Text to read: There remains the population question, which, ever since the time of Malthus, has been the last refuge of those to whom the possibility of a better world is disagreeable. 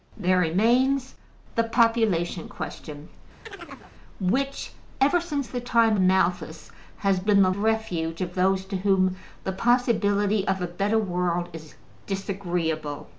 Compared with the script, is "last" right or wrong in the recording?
wrong